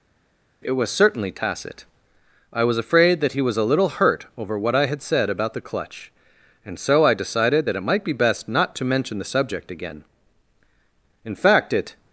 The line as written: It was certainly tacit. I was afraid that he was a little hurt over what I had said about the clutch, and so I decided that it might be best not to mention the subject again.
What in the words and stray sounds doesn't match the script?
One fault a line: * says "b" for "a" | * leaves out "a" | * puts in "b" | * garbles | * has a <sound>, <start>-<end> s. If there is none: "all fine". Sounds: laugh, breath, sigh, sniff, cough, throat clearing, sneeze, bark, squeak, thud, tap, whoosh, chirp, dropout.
* puts in "In fact it"